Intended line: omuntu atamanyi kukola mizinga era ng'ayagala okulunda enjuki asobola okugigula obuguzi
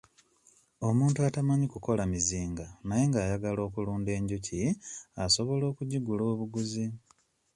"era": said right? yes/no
no